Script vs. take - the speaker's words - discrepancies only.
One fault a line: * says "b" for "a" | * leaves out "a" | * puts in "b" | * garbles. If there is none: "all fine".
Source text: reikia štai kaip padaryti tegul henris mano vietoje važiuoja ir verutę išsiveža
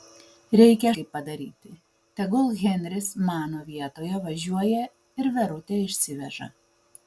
* leaves out "štai"